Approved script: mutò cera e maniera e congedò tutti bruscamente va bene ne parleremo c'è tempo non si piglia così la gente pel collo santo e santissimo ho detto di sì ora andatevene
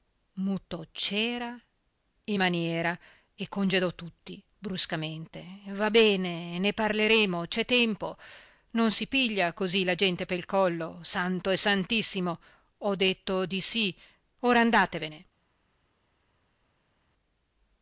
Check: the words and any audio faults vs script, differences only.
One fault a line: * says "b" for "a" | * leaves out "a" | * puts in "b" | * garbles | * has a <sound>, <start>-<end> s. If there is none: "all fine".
all fine